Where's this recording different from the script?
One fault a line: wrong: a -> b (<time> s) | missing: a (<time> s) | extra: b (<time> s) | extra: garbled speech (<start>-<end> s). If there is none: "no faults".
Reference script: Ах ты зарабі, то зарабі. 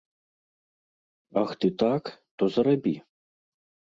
wrong: зарабі -> так (1.8 s)